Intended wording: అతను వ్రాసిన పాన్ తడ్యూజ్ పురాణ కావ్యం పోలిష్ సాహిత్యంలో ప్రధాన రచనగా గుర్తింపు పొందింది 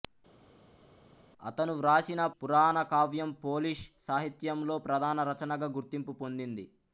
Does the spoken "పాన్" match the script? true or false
false